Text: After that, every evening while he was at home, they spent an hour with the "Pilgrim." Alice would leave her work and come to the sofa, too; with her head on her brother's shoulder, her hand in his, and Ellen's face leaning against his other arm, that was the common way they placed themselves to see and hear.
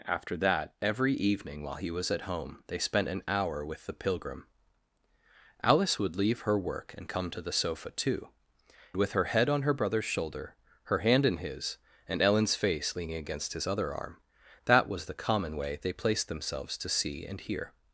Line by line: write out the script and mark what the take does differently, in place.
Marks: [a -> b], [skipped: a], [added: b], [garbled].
After that, every evening while he was at home, they spent an hour with the "Pilgrim." Alice would leave her work and come to the sofa, too; with her head on her brother's shoulder, her hand in his, and Ellen's face leaning against his other arm, that was the common way they placed themselves to see and hear.